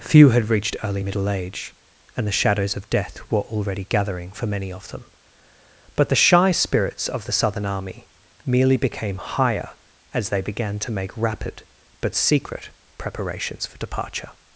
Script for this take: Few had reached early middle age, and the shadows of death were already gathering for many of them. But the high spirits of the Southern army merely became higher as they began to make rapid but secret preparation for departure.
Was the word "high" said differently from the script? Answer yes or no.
yes